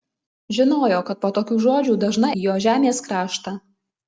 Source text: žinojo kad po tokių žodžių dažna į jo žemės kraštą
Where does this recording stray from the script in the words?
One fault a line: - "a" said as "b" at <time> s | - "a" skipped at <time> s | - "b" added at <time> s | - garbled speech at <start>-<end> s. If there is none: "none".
none